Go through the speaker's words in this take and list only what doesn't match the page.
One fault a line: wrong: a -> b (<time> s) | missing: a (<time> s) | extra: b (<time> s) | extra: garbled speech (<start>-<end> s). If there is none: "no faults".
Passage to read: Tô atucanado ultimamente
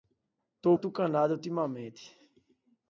no faults